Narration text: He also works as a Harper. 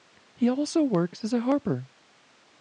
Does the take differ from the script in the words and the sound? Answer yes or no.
no